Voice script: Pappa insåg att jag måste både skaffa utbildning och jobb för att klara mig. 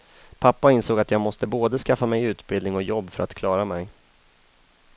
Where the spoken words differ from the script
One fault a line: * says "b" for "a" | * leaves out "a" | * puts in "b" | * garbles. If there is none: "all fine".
* puts in "mig"